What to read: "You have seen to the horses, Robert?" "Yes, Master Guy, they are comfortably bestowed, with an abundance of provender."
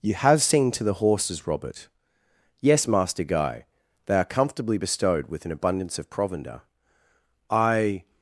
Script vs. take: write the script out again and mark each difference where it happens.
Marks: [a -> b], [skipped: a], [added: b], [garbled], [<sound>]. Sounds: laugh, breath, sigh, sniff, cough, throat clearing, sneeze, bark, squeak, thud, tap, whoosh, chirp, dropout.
"You have seen to the horses, Robert?" "Yes, Master Guy, they are comfortably bestowed, with an abundance of provender." [added: I]